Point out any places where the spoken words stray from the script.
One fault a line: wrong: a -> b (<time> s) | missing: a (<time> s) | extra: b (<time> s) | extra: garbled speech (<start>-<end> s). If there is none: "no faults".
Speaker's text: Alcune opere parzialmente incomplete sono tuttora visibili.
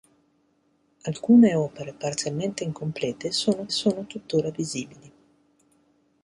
extra: sono (3.7 s)